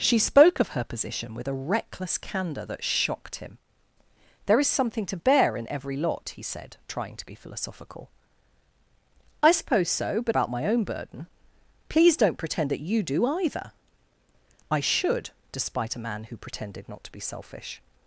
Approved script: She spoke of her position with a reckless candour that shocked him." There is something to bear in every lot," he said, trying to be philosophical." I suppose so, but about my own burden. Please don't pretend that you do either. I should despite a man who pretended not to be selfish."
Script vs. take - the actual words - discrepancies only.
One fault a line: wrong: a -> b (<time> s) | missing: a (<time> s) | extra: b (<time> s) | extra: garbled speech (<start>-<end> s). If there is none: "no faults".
no faults